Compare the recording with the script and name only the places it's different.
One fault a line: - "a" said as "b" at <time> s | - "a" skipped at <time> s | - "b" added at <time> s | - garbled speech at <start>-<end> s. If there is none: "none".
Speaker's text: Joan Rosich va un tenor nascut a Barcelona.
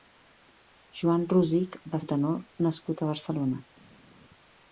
none